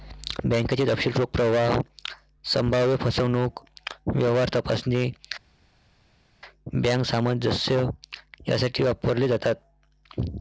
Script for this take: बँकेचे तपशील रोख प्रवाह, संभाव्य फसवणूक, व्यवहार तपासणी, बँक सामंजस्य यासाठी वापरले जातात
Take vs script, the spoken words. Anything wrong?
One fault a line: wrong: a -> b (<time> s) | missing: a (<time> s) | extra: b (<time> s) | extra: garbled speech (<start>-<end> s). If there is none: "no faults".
no faults